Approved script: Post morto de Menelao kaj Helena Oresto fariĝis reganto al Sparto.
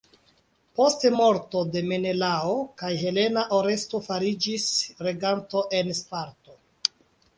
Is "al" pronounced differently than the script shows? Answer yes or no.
yes